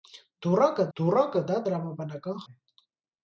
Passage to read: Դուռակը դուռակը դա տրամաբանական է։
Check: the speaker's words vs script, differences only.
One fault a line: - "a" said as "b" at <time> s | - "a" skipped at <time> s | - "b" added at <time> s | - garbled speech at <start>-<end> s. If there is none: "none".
none